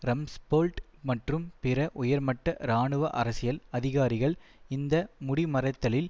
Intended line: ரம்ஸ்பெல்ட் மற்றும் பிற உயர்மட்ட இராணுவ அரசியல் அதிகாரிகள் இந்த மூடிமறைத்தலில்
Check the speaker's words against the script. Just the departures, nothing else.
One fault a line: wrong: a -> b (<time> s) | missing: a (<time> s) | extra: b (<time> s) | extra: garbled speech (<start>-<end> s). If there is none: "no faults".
no faults